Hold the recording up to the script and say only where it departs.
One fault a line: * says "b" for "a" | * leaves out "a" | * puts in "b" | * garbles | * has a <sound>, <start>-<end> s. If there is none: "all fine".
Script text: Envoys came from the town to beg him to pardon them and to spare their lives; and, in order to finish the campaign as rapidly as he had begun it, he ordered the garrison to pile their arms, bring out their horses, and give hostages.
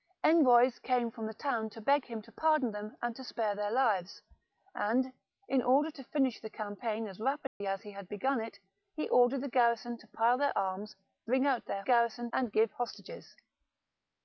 * has a dropout, 7.5-7.6 s
* says "garrison" for "horses"